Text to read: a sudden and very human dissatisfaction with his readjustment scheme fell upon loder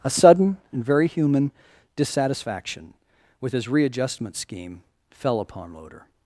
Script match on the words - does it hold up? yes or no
yes